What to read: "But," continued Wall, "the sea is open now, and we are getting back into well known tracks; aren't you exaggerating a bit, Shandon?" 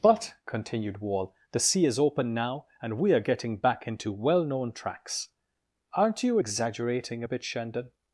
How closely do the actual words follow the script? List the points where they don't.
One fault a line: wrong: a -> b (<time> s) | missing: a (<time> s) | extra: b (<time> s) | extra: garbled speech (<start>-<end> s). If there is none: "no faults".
no faults